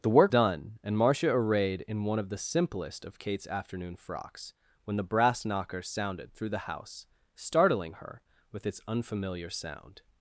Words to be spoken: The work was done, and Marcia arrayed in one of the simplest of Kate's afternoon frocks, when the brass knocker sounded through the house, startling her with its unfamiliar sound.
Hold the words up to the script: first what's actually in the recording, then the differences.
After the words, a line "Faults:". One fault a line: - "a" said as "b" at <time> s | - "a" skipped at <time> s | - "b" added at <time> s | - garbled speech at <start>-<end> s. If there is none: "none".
The work done, and Marcia arrayed in one of the simplest of Kate's afternoon frocks, when the brass knocker sounded through the house, startling her with its unfamiliar sound.
Faults:
- "was" skipped at 0.3 s